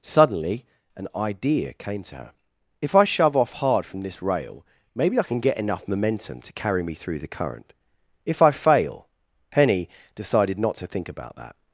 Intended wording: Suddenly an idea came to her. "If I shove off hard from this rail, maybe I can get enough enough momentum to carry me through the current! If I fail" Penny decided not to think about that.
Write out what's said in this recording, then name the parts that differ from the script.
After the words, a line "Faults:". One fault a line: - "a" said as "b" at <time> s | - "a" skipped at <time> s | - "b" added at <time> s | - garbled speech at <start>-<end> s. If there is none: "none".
Suddenly an idea came to her. "If I shove off hard from this rail, maybe I can get enough momentum to carry me through the current! If I fail" Penny decided not to think about that.
Faults:
- "enough" skipped at 5.9 s